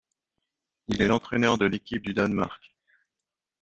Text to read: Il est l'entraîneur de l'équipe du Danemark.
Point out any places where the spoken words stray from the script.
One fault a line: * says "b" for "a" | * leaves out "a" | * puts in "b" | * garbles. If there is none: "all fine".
all fine